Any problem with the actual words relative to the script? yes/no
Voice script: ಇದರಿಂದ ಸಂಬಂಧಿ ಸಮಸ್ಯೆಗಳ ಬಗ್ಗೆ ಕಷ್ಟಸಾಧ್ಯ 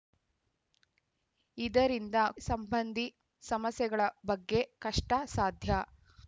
no